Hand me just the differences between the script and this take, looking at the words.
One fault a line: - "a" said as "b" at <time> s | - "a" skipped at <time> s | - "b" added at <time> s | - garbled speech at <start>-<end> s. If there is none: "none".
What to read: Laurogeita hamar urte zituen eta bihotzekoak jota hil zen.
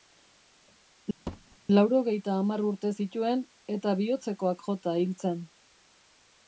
none